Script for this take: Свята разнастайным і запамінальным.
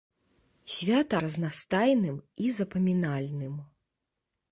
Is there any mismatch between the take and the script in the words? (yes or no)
no